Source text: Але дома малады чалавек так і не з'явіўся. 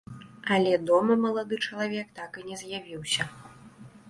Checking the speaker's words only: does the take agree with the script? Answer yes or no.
yes